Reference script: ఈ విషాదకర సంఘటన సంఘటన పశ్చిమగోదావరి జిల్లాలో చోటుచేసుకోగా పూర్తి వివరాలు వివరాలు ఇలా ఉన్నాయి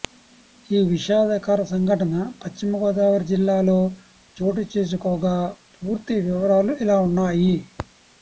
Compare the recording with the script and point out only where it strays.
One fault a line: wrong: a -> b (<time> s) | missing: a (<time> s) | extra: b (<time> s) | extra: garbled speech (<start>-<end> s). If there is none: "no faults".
missing: సంఘటన (2.1 s)
missing: వివరాలు (6.7 s)